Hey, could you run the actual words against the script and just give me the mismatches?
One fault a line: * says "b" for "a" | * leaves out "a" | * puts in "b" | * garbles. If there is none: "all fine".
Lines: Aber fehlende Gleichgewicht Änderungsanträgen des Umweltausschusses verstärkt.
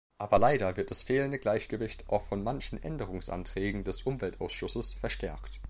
* puts in "leider wird das"
* puts in "auch von manchen"